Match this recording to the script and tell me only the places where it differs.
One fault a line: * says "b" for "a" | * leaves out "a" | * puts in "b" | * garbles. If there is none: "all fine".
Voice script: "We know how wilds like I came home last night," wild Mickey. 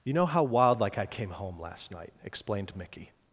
* says "You" for "We"
* says "wild" for "wilds"
* says "explained" for "wild"